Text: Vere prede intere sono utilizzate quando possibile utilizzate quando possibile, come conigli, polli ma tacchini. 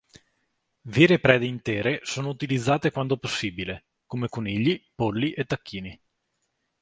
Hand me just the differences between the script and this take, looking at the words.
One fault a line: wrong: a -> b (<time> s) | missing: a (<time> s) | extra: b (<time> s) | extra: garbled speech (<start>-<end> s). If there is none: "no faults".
missing: utilizzate quando possibile (3.9 s)
wrong: ma -> e (5.3 s)